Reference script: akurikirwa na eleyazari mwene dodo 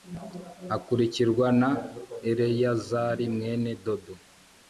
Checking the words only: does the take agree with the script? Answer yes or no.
yes